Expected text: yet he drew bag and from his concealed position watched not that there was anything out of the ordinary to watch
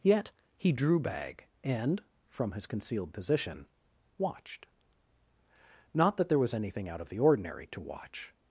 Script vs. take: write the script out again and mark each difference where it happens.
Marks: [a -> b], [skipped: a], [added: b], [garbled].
yet he drew bag and from his concealed position watched not that there was anything out of the ordinary to watch